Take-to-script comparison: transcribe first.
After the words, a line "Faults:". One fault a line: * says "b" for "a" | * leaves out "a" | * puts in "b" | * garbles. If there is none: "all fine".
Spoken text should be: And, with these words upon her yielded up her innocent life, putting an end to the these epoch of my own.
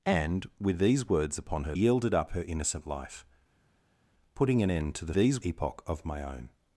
And, with these words upon her yielded up her innocent life, putting an end to the these epoch of my own.
Faults:
all fine